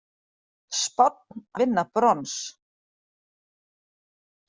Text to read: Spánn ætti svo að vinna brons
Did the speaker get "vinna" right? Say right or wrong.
right